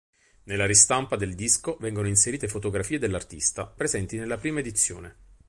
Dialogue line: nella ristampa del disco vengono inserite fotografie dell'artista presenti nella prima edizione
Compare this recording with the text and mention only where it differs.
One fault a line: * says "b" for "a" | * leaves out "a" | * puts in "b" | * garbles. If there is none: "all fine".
all fine